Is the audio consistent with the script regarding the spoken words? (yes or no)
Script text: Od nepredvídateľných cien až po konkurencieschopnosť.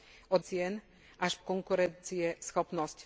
no